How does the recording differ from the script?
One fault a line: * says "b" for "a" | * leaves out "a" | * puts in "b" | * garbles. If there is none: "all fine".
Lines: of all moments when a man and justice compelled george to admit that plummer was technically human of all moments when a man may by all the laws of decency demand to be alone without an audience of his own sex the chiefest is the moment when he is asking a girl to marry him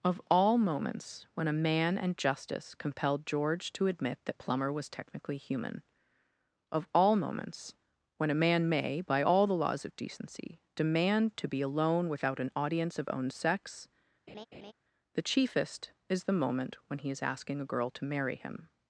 * leaves out "his"